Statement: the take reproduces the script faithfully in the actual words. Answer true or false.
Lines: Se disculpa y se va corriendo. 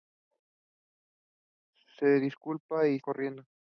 false